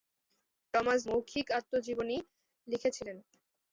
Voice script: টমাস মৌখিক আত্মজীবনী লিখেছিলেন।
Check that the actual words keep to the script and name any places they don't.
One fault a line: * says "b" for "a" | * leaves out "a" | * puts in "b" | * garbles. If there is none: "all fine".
all fine